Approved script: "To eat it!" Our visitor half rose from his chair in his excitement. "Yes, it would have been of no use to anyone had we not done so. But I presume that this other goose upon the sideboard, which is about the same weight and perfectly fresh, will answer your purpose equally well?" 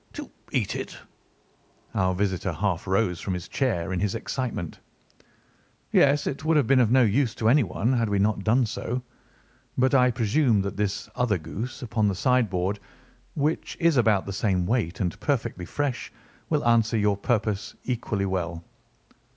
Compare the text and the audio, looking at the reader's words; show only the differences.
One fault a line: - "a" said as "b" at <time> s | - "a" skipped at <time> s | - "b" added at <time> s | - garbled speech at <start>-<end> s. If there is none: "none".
none